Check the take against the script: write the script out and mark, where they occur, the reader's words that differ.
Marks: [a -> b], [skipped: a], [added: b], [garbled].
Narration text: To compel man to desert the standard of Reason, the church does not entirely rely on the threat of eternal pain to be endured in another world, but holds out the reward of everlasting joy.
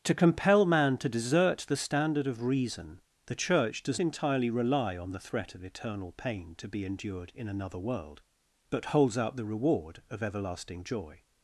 To compel man to desert the standard of Reason, the church does [skipped: not] entirely rely on the threat of eternal pain to be endured in another world, but holds out the reward of everlasting joy.